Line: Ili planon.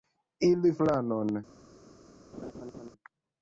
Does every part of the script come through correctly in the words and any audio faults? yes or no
no